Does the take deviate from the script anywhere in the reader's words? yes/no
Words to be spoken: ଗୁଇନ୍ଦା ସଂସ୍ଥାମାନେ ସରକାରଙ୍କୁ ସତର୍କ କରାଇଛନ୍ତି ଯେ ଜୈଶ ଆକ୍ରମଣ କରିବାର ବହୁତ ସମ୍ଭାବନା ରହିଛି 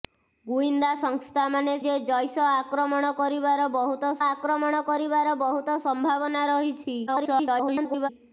yes